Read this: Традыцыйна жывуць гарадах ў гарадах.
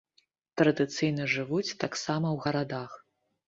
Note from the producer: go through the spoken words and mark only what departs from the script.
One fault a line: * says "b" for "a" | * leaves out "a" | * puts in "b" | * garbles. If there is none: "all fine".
* says "таксама" for "гарадах"